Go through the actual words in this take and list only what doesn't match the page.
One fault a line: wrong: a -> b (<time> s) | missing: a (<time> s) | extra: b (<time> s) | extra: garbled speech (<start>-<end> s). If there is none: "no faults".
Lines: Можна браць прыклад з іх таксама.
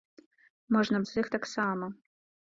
missing: браць прыклад (1.0 s)